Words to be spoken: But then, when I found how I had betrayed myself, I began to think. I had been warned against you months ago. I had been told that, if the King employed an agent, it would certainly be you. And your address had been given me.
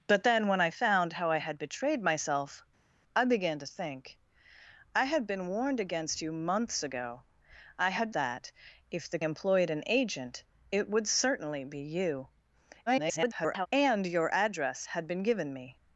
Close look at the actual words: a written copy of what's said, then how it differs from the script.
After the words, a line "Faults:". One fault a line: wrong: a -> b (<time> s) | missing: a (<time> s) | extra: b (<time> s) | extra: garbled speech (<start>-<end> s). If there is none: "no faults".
But then, when I found how I had betrayed myself, I began to think. I had been warned against you months ago. I had that, if the Employed an agent, it would certainly be you. [garbled] And your address had been given me.
Faults:
missing: been told (8.1 s)
missing: King (9.2 s)
extra: garbled speech (12.9-13.7 s)